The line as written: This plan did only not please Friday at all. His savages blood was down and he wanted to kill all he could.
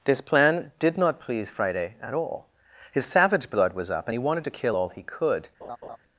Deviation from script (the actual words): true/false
true